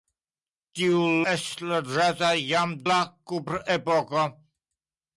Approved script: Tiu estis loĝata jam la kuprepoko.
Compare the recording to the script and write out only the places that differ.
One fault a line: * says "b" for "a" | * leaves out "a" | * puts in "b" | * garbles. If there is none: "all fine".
all fine